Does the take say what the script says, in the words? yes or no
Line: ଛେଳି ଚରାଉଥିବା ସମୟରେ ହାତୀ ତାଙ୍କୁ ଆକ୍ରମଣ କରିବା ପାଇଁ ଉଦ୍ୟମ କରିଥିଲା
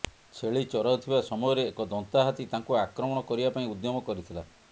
no